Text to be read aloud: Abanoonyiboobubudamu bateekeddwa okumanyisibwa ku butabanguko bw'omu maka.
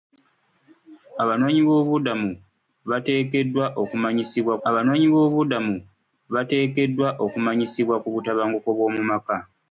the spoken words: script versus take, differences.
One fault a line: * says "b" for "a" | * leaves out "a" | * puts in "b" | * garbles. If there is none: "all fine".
* puts in "abanoonyiboobubudamu bateekeddwa okumanyisibwa"